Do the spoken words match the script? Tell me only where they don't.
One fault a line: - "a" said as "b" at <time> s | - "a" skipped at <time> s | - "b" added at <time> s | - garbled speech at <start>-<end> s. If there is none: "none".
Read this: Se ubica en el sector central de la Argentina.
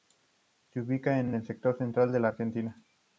- "en" added at 1.2 s